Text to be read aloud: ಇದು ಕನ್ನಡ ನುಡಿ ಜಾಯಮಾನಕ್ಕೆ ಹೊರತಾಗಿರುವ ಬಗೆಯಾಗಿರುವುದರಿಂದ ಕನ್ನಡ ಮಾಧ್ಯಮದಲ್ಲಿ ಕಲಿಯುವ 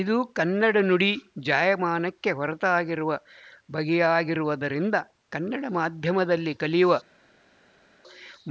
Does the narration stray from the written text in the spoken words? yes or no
no